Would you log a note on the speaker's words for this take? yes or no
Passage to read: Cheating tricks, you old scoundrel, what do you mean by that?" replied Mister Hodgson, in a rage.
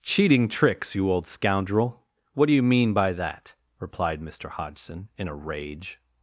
no